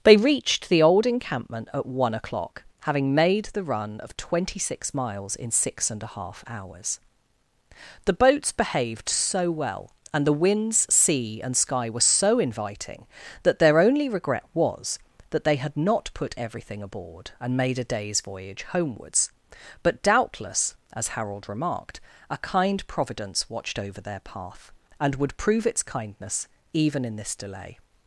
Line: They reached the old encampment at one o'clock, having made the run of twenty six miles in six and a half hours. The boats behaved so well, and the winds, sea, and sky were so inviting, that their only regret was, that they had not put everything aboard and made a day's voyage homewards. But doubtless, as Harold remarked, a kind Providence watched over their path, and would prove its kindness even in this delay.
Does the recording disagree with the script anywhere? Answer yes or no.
no